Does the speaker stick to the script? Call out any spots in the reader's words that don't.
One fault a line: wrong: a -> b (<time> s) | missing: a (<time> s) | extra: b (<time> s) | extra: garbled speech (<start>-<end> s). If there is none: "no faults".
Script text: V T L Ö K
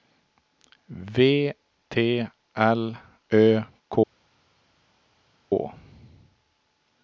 no faults